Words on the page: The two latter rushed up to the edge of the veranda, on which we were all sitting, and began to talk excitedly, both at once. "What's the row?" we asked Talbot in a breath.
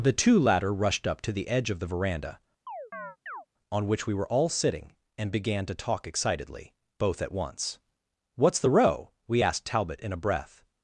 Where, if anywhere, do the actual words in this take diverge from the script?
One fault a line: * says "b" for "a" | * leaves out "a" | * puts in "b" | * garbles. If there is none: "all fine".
all fine